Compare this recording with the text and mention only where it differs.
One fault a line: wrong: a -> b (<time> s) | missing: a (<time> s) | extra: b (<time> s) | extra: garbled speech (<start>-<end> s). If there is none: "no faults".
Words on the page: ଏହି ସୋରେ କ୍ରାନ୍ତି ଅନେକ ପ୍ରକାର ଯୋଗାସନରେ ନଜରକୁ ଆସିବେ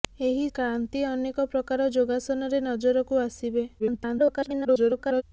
missing: ସୋରେ (0.5 s)
extra: garbled speech (3.8-5.2 s)